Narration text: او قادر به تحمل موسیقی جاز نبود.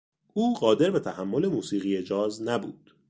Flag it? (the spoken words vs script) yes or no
no